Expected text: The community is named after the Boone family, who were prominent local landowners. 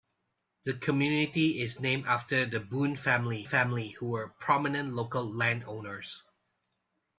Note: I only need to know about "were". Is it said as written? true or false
true